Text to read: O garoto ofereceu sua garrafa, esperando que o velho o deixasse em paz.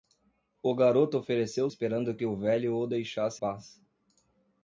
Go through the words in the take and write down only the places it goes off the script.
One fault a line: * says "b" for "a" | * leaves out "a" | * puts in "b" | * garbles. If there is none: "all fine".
* leaves out "sua garrafa"
* leaves out "em"